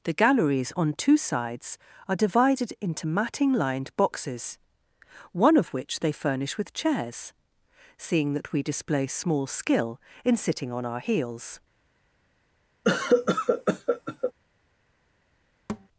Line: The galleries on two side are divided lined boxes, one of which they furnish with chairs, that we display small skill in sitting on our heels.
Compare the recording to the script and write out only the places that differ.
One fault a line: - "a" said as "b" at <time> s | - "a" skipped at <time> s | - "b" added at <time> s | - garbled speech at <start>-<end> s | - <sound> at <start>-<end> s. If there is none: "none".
- "side" said as "sides" at 1.1 s
- "into matting" added at 2.8 s
- "seeing" added at 8.0 s
- cough at 12.8-14.3 s
- thud at 15.7-15.9 s